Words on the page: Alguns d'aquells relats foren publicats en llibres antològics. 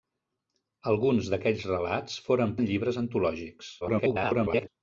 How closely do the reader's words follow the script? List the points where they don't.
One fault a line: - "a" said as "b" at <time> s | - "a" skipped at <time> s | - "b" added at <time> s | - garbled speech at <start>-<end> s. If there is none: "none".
- "publicats" skipped at 2.5 s
- garbled speech at 3.8-4.7 s